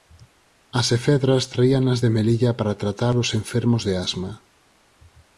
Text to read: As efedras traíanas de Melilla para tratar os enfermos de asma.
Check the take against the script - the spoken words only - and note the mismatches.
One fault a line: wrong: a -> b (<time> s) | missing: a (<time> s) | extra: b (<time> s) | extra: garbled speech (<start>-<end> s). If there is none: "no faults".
no faults